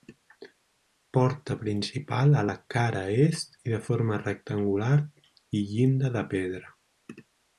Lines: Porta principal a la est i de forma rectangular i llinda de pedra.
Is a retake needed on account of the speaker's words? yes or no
yes